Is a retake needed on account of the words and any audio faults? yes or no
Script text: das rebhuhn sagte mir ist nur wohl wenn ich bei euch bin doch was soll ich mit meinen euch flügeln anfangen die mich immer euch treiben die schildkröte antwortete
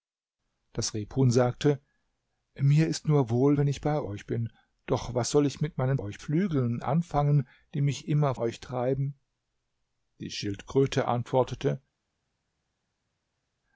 no